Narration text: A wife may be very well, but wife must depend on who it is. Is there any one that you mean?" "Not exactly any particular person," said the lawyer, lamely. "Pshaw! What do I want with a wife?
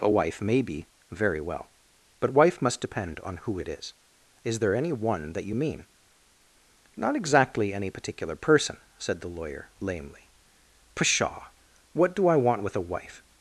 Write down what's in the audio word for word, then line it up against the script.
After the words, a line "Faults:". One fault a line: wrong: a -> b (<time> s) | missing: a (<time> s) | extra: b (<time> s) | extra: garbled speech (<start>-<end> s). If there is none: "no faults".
A wife may be very well, but wife must depend on who it is. Is there any one that you mean?" "Not exactly any particular person," said the lawyer, lamely. "Pshaw! What do I want with a wife?
Faults:
no faults